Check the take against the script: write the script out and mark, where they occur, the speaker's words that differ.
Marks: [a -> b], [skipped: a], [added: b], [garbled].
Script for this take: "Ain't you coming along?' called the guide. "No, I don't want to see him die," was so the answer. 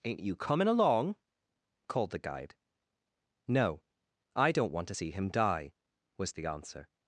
"Ain't you coming along?' called the guide. "No, I don't want to see him die," was [skipped: so] the answer.